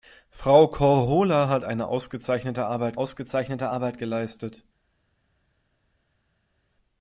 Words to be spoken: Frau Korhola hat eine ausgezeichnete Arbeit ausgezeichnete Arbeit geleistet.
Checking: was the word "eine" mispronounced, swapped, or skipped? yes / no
no